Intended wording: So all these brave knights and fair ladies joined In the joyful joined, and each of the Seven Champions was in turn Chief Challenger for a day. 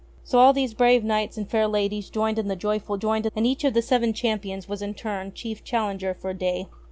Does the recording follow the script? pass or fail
pass